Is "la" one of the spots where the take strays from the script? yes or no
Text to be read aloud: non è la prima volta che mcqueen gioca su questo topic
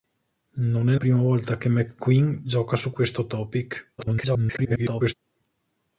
yes